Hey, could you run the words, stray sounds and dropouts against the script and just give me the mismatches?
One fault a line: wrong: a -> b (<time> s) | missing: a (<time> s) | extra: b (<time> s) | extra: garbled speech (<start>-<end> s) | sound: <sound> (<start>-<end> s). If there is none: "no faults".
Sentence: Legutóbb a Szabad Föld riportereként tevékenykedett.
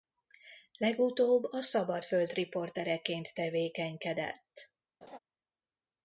sound: laugh (5.0-5.2 s)